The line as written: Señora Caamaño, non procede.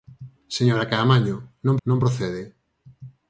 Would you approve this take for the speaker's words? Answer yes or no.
no